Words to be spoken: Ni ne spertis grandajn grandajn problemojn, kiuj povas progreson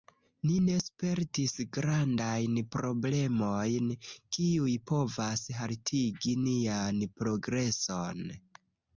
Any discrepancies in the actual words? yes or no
yes